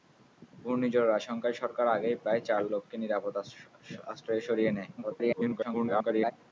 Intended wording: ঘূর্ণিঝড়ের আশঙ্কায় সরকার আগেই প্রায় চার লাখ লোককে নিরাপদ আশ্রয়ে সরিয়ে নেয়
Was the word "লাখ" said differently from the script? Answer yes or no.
yes